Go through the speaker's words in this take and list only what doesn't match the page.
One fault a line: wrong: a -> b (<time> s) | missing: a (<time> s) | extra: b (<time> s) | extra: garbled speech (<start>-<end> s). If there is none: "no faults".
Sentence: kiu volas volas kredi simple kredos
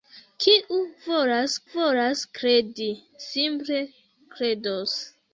no faults